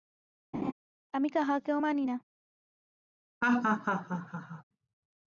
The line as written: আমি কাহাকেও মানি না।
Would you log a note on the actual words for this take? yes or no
no